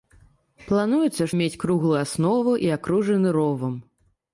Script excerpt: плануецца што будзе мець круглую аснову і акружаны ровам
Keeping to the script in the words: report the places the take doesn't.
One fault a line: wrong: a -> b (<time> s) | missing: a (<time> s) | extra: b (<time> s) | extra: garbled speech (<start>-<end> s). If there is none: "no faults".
missing: што будзе (1.3 s)